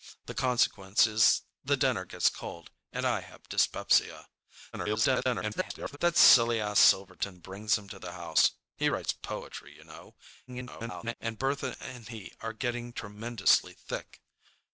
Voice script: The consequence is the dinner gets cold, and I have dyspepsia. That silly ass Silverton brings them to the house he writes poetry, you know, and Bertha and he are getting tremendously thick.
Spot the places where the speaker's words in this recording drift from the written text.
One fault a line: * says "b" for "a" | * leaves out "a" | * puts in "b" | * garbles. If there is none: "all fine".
* garbles
* garbles